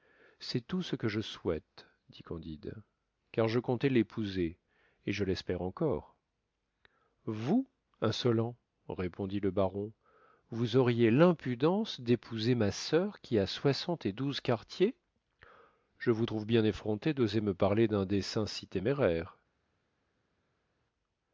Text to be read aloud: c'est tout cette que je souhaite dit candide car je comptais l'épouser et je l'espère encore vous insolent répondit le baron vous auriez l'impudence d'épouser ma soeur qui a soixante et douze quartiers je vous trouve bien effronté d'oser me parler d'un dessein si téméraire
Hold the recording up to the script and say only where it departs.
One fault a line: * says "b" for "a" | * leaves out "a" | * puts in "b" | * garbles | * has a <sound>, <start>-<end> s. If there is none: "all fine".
* says "ce" for "cette"